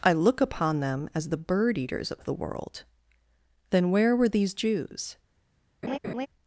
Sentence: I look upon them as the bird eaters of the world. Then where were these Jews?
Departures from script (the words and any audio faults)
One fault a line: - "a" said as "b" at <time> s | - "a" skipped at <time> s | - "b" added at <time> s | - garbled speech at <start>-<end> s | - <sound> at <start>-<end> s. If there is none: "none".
- laugh at 5.8-6.3 s